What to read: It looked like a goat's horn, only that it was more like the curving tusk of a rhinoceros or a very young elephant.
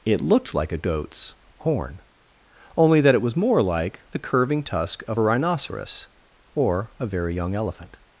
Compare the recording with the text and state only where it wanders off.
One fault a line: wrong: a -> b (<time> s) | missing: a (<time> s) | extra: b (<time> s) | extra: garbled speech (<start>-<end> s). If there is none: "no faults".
no faults